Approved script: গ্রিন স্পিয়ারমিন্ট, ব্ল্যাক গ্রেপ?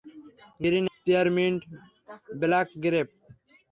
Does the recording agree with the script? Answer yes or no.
yes